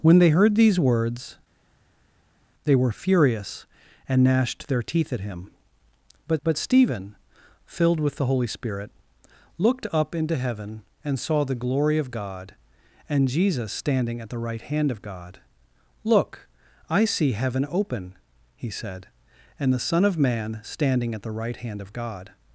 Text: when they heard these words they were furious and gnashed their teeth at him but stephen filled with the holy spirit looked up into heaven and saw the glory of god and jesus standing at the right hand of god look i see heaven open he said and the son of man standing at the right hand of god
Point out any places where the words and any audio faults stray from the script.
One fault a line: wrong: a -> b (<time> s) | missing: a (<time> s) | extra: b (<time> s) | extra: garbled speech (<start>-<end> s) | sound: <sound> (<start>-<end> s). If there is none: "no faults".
extra: but (6.4 s)